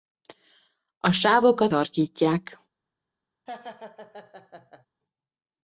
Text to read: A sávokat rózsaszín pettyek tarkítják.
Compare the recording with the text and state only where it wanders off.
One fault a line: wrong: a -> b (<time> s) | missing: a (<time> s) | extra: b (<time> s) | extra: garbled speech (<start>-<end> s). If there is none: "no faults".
missing: rózsaszín pettyek (1.7 s)